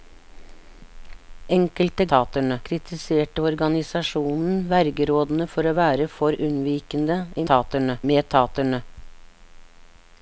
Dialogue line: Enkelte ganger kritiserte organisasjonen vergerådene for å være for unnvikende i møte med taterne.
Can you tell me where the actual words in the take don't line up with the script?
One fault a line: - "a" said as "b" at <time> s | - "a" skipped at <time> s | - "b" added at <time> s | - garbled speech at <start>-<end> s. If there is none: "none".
- "ganger" said as "taterne" at 2.1 s
- "møte" said as "taterne" at 7.5 s